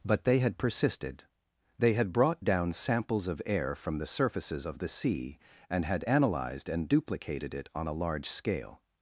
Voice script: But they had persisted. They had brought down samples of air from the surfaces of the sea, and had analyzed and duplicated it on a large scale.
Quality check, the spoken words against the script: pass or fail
pass